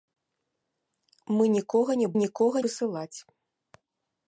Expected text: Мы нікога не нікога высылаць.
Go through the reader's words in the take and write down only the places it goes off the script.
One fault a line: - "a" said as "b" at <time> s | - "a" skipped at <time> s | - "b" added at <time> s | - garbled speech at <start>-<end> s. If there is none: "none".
none